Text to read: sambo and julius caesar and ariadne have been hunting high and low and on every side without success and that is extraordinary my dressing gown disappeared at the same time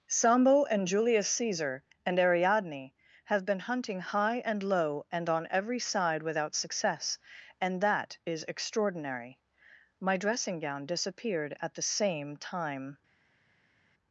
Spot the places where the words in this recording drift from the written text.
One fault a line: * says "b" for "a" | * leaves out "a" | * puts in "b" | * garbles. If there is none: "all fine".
all fine